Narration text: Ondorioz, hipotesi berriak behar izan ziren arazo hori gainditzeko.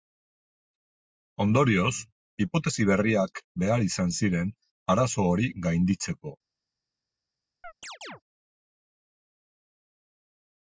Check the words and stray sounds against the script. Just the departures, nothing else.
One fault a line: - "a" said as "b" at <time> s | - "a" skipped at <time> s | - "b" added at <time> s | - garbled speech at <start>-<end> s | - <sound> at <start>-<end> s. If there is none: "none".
- chirp at 7.6-8.2 s